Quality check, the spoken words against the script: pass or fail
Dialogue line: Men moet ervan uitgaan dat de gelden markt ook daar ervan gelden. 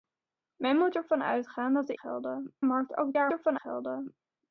pass